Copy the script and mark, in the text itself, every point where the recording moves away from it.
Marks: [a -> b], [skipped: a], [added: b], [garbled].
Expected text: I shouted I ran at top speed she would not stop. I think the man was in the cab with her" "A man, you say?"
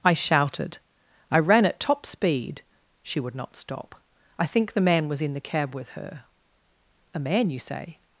I shouted I ran at top speed she would not stop. I think the man was in the cab with her" "A man, you say?"